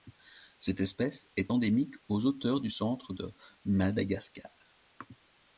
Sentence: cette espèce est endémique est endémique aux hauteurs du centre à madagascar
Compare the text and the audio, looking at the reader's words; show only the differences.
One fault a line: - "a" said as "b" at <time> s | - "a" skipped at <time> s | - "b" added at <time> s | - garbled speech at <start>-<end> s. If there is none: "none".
- "est endémique" skipped at 2.0 s
- "à" said as "de" at 3.1 s